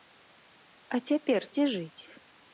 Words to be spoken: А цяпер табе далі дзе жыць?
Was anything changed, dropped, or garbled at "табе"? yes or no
yes